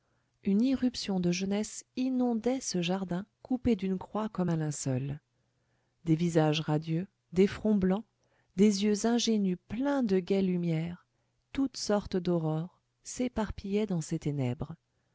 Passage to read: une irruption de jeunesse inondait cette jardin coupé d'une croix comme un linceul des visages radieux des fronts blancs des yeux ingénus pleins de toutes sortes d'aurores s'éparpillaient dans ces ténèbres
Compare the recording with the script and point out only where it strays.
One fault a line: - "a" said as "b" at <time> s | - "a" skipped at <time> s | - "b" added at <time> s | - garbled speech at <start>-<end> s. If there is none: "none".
- "cette" said as "ce" at 2.6 s
- "gaie lumière" added at 10.2 s